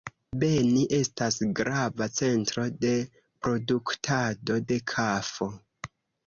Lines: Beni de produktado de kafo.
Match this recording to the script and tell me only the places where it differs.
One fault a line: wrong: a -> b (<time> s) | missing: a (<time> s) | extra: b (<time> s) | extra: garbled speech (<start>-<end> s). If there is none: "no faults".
extra: estas grava centro (1.0 s)